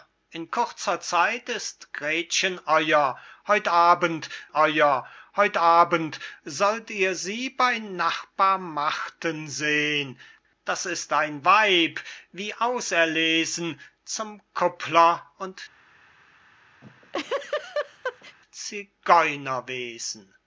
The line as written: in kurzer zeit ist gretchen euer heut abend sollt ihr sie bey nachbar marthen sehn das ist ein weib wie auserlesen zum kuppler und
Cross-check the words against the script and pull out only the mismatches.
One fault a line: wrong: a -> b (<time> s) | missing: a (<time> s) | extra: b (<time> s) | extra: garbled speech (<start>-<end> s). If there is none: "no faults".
extra: euer heut abend (4.5 s)